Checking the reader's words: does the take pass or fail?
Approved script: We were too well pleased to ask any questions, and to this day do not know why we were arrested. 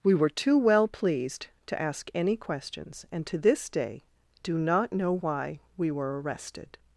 pass